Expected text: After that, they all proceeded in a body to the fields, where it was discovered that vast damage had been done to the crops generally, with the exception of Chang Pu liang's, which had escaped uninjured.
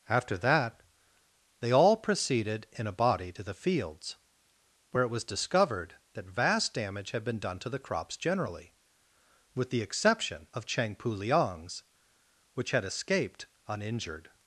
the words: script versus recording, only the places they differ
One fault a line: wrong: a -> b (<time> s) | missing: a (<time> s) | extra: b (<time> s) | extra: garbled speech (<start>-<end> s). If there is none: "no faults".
no faults